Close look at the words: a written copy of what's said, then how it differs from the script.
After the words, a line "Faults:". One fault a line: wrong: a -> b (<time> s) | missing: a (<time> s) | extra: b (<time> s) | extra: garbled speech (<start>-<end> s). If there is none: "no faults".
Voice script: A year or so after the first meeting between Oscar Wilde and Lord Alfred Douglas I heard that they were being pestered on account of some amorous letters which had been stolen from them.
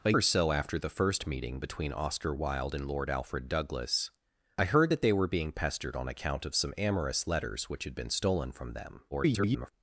A or so after the first meeting between Oscar Wilde and Lord Alfred Douglas I heard that they were being pestered on account of some amorous letters which had been stolen from them. [garbled]
Faults:
missing: year (0.1 s)
extra: garbled speech (9.1-9.7 s)